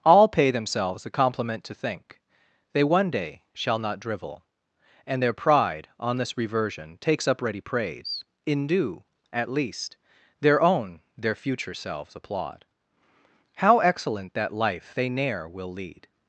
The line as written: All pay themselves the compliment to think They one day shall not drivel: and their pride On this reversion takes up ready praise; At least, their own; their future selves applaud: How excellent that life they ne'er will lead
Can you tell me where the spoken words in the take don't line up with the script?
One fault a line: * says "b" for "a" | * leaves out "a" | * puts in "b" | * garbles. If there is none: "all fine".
* puts in "in due"